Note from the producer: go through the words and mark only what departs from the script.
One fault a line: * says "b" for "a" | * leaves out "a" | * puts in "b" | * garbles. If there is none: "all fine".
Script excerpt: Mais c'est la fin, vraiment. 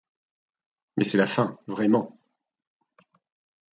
all fine